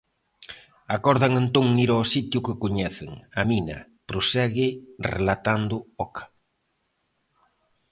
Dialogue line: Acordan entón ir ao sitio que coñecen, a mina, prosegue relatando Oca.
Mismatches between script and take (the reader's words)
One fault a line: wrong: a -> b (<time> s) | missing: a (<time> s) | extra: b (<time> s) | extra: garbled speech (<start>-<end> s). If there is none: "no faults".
no faults